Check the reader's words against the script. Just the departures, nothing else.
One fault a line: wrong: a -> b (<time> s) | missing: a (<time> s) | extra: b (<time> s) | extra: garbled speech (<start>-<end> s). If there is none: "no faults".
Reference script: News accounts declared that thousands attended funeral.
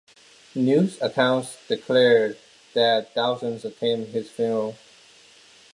extra: his (4.1 s)